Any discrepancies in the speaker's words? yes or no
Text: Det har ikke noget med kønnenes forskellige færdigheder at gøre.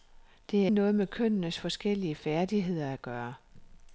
yes